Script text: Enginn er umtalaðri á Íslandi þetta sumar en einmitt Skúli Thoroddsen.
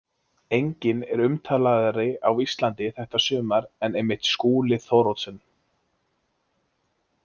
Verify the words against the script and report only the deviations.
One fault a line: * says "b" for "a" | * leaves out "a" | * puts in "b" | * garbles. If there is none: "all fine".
all fine